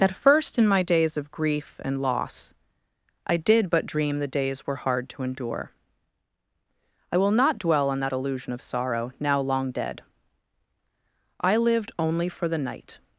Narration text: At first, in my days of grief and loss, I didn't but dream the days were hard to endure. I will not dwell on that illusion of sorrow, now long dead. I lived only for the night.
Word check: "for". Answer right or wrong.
right